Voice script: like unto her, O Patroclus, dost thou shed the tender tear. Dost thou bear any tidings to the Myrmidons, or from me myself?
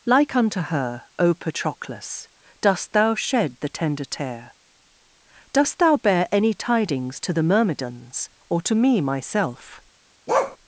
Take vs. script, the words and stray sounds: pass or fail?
fail